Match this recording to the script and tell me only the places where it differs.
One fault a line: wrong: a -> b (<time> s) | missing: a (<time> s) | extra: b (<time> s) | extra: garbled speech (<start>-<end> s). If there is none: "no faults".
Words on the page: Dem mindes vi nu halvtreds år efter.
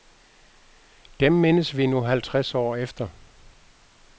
no faults